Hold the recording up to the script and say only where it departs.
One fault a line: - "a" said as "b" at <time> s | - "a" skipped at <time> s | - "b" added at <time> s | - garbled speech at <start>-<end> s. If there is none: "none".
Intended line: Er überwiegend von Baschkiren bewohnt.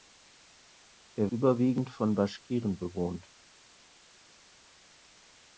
none